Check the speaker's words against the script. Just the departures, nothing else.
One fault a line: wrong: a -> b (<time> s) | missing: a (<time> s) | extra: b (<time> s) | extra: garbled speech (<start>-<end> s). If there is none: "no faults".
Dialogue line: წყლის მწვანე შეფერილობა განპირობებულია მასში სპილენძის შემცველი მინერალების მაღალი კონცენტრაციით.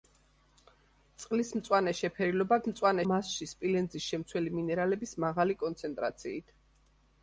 wrong: განპირობებულია -> მწვანე (2.7 s)